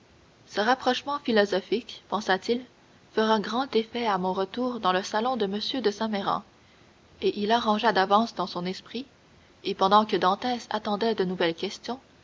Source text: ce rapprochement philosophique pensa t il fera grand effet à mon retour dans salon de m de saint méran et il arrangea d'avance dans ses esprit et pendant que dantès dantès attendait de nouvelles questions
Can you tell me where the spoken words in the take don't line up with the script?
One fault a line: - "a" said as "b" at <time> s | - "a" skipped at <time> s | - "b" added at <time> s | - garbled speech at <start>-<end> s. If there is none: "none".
- "le" added at 4.9 s
- "ses" said as "son" at 8.5 s
- "dantès" skipped at 10.7 s